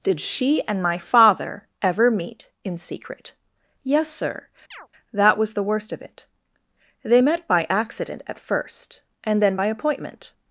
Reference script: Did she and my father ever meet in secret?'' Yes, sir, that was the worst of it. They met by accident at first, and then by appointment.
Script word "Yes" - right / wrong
right